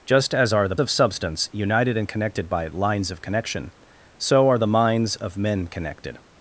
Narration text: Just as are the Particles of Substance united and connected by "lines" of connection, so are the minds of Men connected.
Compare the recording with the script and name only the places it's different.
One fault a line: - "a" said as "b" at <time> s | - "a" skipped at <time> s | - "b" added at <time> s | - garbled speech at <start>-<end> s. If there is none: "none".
- "Particles" skipped at 0.8 s